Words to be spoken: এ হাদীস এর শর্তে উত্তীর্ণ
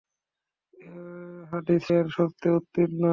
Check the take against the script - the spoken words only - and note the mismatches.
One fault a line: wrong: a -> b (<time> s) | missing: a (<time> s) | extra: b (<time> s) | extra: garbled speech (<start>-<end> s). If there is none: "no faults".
no faults